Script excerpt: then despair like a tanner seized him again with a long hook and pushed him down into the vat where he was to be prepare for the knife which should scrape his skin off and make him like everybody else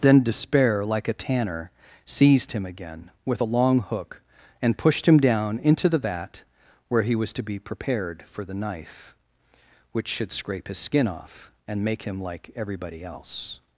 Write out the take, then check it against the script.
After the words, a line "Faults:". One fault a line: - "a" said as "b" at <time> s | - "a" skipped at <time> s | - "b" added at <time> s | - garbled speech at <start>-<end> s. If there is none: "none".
then despair like a tanner seized him again with a long hook and pushed him down into the vat where he was to be prepared for the knife which should scrape his skin off and make him like everybody else
Faults:
- "prepare" said as "prepared" at 7.6 s